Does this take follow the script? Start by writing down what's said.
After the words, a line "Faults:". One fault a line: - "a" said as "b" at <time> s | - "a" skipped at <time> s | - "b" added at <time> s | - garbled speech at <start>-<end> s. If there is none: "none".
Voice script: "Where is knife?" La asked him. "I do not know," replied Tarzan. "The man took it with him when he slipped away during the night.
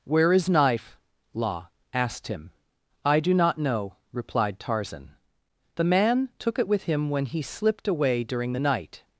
"Where is knife?" La asked him. "I do not know," replied Tarzan. "The man took it with him when he slipped away during the night.
Faults:
none